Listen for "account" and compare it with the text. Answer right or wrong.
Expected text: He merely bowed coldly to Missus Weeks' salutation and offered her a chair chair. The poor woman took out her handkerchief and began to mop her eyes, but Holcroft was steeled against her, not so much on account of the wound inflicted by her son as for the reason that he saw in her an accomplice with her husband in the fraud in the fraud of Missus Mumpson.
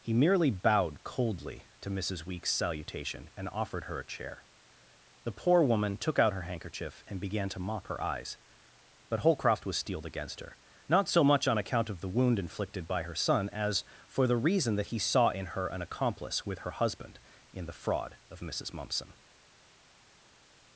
right